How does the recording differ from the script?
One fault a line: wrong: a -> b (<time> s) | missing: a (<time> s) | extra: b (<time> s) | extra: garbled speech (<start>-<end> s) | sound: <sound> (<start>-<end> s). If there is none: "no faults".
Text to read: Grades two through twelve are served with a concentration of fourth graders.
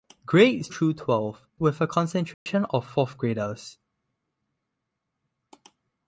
missing: two (0.7 s)
missing: are served (1.5 s)
sound: dropout (2.3-2.5 s)